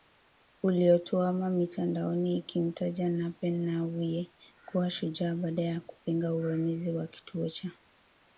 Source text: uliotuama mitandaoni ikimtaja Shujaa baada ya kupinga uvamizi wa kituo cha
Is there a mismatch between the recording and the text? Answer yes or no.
yes